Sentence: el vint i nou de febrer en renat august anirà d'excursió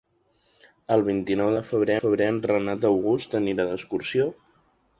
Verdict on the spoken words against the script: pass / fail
fail